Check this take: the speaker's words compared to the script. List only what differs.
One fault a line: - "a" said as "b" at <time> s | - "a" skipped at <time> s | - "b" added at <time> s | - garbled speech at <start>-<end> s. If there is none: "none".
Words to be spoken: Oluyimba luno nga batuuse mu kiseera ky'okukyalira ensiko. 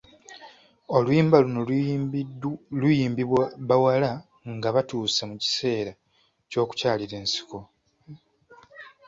- "luyimbibwa bawala" added at 2.8 s